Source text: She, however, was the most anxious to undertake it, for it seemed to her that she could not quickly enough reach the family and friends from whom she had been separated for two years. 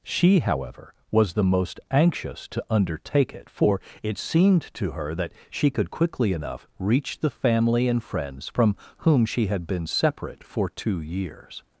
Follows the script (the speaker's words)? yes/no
no